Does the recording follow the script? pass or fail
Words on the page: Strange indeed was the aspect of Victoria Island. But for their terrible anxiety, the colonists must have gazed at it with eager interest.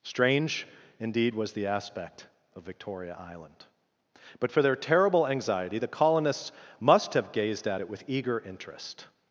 pass